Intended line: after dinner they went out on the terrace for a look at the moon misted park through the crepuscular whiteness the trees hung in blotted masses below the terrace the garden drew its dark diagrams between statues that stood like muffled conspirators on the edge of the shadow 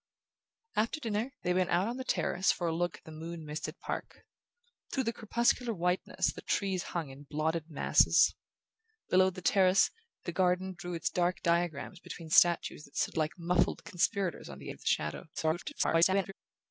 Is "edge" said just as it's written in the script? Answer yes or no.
no